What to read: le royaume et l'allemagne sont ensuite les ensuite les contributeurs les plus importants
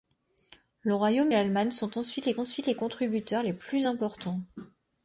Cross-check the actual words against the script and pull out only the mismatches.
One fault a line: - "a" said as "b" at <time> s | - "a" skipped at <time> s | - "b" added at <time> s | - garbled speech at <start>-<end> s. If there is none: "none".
none